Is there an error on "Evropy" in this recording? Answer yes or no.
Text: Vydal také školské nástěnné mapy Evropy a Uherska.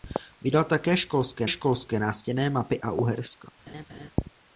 yes